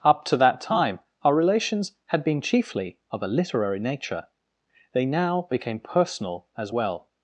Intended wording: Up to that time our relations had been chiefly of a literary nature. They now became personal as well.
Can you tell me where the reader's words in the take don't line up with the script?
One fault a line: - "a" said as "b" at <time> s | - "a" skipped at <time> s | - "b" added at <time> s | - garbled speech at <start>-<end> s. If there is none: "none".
none